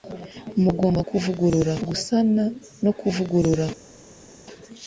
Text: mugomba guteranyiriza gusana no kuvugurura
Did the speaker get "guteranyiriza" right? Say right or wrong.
wrong